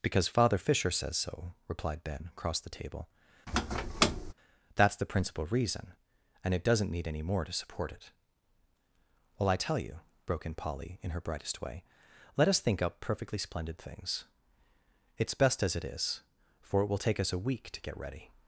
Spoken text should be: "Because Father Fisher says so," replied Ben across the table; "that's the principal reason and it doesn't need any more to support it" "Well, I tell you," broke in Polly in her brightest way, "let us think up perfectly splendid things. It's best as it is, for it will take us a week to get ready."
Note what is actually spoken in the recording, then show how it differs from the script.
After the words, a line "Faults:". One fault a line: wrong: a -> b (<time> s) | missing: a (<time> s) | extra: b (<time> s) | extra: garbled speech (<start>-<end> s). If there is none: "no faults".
"Because Father Fisher says so," replied Ben across the table; "that's the principal reason and it doesn't need any more to support it" "Well, I tell you," broke in Polly in her brightest way, "let us think up perfectly splendid things. It's best as it is, for it will take us a week to get ready."
Faults:
no faults